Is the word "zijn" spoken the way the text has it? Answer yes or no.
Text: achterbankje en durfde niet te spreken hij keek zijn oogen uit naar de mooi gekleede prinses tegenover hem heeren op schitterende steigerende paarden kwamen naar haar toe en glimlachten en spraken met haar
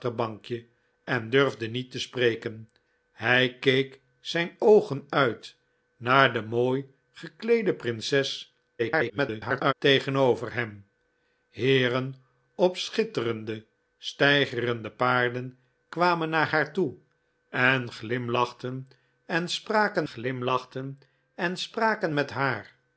yes